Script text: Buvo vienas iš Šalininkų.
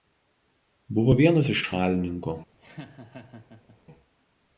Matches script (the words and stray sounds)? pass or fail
fail